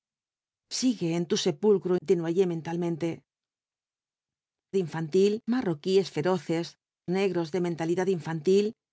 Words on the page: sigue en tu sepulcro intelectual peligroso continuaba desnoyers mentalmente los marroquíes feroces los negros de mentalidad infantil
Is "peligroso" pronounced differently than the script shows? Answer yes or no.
yes